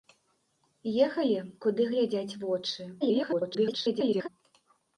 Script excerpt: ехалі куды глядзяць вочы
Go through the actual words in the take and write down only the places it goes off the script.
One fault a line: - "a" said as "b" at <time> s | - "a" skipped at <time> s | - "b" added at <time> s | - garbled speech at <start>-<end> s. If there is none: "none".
- garbled speech at 3.0-4.3 s